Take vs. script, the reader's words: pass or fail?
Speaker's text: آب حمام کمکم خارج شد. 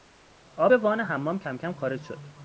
fail